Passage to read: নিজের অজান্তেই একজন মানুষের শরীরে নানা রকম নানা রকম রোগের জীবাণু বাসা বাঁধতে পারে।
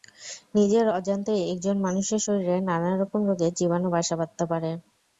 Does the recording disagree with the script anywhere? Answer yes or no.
yes